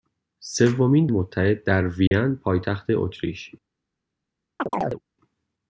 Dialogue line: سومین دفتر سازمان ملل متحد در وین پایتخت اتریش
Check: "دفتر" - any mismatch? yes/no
yes